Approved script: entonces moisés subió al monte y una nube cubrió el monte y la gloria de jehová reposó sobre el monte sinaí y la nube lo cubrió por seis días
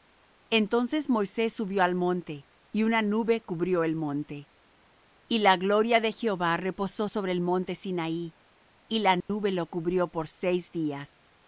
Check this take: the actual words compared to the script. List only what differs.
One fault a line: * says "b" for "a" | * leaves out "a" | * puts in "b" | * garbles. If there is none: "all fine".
all fine